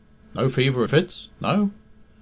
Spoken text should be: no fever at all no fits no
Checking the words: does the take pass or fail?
fail